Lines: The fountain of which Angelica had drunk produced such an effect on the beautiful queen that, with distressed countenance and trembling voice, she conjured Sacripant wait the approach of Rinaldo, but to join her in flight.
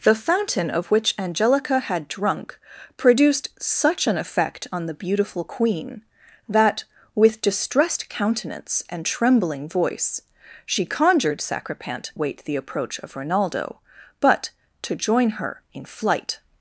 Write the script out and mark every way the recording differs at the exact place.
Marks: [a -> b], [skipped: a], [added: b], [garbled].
The fountain of which Angelica had drunk produced such an effect on the beautiful queen that, with distressed countenance and trembling voice, she conjured Sacripant wait the approach of Rinaldo, but to join her in flight.